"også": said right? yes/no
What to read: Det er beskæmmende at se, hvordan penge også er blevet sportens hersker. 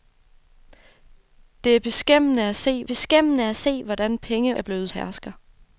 no